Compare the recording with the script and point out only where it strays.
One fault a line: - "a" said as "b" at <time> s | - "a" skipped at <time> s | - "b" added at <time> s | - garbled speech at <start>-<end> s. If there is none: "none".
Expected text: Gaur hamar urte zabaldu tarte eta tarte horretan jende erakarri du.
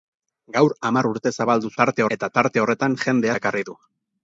none